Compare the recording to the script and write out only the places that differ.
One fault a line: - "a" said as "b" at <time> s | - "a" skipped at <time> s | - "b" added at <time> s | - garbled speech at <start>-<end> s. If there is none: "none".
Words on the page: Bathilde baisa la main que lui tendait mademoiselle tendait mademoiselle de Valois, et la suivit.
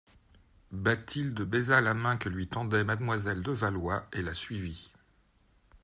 - "tendait mademoiselle" skipped at 3.4 s